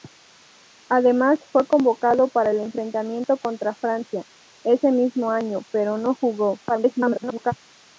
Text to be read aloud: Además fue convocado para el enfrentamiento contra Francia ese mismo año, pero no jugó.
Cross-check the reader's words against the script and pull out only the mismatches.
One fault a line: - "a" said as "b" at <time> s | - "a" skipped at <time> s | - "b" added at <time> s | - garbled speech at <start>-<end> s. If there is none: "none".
- garbled speech at 6.7-7.5 s